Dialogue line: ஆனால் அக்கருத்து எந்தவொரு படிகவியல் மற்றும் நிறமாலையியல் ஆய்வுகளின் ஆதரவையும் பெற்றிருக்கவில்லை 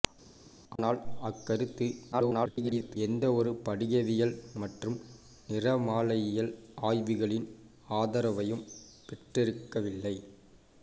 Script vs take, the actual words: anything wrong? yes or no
yes